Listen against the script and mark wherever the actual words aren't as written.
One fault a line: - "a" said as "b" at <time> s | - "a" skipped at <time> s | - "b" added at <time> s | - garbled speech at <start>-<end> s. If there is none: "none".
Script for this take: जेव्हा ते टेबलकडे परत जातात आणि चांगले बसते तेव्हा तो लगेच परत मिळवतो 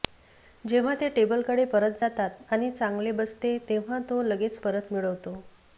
none